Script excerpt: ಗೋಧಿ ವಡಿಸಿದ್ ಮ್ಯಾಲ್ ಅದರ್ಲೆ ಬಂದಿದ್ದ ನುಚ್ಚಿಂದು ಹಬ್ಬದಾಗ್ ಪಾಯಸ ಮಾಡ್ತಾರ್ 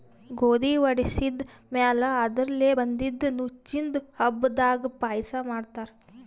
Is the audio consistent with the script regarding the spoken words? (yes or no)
yes